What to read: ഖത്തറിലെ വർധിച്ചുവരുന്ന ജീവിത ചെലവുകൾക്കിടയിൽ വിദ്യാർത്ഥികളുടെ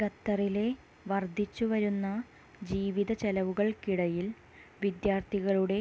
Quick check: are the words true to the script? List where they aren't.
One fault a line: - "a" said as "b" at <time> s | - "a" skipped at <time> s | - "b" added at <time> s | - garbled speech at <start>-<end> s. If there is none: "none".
none